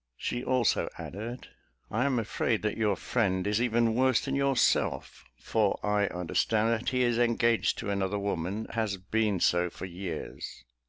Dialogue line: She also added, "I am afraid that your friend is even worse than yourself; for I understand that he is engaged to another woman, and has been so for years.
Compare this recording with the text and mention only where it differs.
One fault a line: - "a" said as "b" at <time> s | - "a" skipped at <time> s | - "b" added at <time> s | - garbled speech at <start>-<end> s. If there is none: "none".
- "and" skipped at 8.7 s